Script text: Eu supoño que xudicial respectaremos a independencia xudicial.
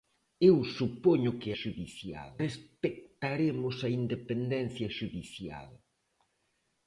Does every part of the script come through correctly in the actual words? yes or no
yes